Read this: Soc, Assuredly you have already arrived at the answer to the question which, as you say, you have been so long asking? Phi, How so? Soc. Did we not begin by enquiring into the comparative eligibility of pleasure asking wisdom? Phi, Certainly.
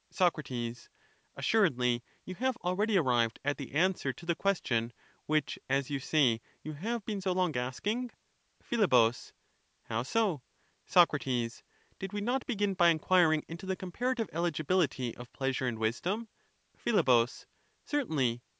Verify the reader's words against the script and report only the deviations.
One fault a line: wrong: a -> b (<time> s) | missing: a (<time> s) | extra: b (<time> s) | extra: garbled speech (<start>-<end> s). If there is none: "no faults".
wrong: asking -> and (15.7 s)